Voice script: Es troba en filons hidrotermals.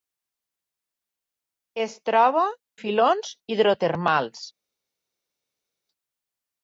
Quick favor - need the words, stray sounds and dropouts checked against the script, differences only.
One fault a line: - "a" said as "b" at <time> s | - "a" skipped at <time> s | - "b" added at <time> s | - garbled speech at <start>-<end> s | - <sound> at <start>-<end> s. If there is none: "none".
- "en" skipped at 2.5 s